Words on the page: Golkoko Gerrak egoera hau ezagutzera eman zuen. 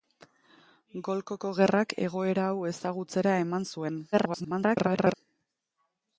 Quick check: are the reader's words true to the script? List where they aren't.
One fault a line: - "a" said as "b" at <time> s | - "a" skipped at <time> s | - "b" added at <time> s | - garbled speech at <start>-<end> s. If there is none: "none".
- garbled speech at 4.1-5.1 s